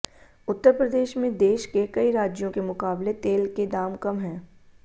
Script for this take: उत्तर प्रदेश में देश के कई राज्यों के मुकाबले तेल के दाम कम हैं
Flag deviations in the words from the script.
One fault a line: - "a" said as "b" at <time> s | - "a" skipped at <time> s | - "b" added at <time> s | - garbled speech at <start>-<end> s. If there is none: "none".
none